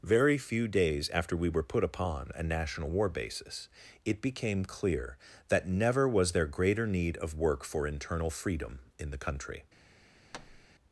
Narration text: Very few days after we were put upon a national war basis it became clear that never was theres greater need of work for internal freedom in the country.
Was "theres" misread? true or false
true